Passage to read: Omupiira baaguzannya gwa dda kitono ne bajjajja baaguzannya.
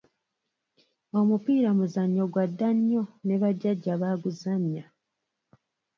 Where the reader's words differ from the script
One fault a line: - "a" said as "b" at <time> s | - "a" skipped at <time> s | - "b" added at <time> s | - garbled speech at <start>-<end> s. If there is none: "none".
- "baaguzannya" said as "muzannyo" at 1.8 s
- "kitono" said as "nnyo" at 2.8 s